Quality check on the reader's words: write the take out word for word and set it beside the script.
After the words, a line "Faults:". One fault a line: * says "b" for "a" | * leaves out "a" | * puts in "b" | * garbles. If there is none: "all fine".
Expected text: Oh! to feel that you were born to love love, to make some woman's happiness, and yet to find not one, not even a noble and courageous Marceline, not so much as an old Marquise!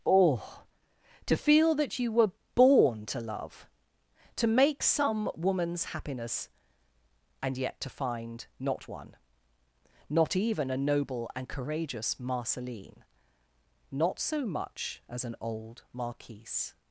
Oh! to feel that you were born to love, to make some woman's happiness, and yet to find not one, not even a noble and courageous Marceline, not so much as an old Marquise!
Faults:
* leaves out "love"